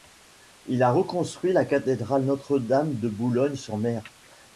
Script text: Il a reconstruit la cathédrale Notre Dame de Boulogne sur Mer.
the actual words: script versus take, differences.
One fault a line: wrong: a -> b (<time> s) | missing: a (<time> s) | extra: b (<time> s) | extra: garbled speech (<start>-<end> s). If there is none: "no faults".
no faults